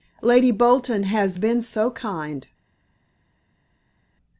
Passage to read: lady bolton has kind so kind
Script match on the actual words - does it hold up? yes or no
no